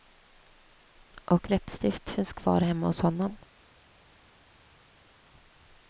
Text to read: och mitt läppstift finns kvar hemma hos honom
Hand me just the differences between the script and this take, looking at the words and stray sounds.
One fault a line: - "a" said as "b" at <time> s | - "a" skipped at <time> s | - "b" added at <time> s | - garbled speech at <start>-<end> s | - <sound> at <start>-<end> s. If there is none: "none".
- "mitt" skipped at 1.5 s